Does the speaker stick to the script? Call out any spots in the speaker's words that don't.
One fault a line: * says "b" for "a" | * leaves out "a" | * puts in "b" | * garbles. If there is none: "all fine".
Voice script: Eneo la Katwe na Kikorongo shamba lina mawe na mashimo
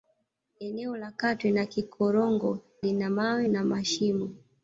* leaves out "shamba"